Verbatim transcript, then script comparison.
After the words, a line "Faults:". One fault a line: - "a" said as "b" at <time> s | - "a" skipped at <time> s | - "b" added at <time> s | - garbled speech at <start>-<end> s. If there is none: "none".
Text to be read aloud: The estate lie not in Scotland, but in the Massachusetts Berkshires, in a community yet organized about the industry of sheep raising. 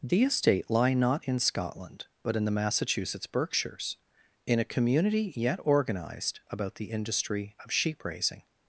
The estate lie not in Scotland, but in the Massachusetts Berkshires, in a community yet organized about the industry of sheep raising.
Faults:
none